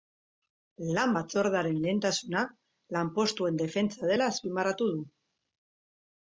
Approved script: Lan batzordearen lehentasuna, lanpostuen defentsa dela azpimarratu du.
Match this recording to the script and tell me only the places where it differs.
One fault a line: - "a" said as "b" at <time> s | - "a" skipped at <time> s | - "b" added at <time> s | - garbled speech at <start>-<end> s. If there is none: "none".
none